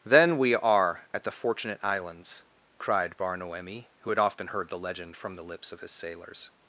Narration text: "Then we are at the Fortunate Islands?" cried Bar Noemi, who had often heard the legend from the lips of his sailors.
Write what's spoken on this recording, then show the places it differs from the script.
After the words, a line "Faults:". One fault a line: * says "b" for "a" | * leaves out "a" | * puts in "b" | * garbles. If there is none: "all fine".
"Then we are at the Fortunate Islands?" cried Bar Noemi, who had often heard the legend from the lips of his sailors.
Faults:
all fine